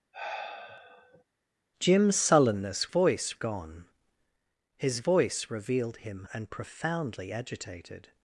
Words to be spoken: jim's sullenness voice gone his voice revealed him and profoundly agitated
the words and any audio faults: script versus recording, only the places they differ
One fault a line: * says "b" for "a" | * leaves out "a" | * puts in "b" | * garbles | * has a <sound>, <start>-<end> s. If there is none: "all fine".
* has a sigh, 0.1-1.2 s